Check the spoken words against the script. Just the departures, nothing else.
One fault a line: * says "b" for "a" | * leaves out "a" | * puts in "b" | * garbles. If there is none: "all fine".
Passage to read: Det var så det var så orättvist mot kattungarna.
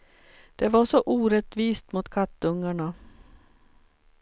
* leaves out "det var så"